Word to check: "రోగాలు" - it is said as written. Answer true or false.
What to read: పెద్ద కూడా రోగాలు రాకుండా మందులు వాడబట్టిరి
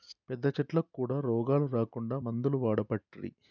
true